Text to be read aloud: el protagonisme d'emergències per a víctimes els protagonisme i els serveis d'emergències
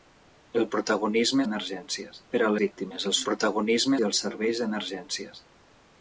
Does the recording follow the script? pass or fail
pass